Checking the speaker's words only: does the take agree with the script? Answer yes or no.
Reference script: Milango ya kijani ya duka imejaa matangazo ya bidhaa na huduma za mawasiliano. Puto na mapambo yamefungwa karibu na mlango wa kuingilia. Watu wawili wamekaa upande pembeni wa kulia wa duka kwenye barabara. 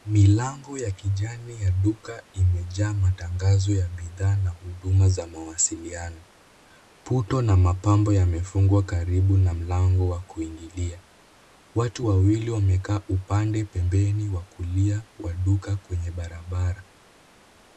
yes